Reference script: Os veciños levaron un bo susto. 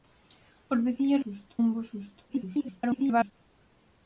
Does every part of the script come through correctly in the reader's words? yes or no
no